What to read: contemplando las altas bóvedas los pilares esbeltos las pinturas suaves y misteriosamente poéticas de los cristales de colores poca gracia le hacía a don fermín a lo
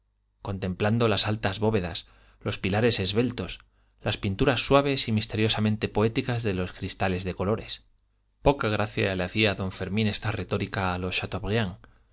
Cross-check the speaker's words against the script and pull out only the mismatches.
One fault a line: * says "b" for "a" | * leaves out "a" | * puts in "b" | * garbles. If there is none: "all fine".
* puts in "esta retórica"